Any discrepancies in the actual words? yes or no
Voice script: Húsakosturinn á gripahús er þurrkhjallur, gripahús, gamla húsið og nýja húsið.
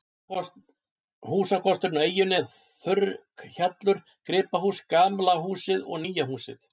yes